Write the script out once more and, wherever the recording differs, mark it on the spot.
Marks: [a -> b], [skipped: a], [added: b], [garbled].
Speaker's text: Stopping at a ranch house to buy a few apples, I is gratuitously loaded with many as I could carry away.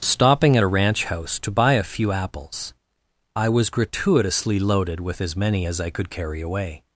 Stopping at a ranch house to buy a few apples, I [is -> was] gratuitously loaded with [added: as] many as I could carry away.